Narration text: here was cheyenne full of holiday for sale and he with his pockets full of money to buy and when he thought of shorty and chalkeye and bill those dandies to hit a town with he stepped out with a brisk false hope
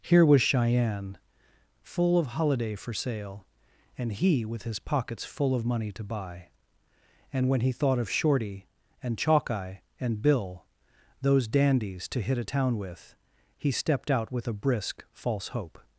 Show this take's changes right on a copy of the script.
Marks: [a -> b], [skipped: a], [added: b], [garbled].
here was cheyenne full of holiday for sale and he with his pockets full of money to buy and when he thought of shorty and chalkeye and bill those dandies to hit a town with he stepped out with a brisk false hope